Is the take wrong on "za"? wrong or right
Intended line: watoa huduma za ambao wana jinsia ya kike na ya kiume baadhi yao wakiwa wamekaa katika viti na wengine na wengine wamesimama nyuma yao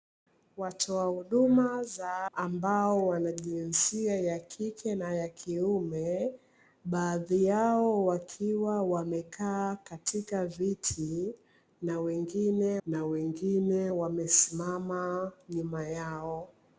right